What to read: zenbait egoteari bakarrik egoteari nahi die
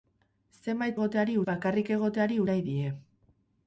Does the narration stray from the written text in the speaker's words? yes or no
no